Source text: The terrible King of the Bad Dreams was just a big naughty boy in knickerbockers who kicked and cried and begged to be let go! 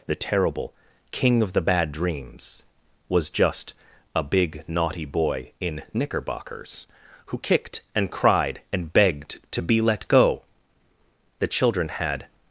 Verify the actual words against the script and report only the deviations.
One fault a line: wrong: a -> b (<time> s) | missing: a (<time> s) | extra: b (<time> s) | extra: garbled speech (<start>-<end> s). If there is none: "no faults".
extra: The children had (11.4 s)